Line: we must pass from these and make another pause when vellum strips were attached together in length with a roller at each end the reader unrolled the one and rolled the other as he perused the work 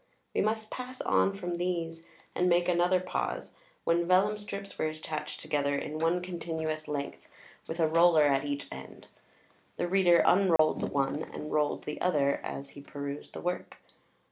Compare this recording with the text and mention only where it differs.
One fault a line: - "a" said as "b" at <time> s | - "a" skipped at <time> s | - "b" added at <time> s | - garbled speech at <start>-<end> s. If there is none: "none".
- "on" added at 1.0 s
- "one continuous" added at 6.0 s